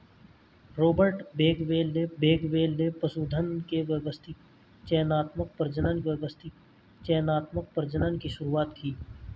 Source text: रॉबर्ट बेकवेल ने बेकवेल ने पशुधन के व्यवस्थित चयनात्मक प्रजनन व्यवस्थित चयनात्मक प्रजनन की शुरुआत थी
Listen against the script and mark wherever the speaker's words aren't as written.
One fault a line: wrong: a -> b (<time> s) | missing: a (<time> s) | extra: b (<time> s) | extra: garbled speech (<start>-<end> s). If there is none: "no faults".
no faults